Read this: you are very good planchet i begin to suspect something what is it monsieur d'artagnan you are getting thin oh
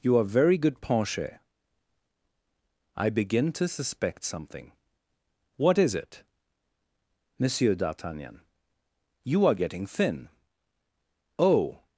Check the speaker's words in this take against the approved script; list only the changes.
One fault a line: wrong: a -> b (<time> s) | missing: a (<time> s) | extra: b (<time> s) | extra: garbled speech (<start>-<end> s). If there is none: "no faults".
no faults